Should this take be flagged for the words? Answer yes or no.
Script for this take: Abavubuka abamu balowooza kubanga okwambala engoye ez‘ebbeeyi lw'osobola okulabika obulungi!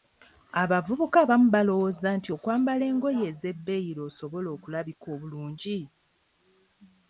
yes